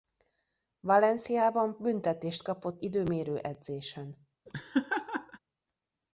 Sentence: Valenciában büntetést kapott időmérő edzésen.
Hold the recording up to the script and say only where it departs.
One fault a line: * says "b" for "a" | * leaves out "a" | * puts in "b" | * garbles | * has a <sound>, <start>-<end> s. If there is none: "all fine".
* has a laugh, 4.5-5.4 s